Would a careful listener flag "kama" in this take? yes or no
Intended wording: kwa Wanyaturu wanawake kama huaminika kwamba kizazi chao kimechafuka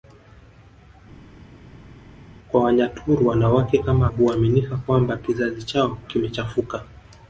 no